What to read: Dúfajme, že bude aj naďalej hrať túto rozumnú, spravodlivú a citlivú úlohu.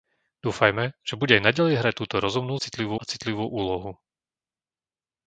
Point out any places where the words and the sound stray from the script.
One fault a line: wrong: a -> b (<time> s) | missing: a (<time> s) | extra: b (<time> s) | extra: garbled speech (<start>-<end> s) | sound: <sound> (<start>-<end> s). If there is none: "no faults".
wrong: spravodlivú -> citlivú (2.5 s)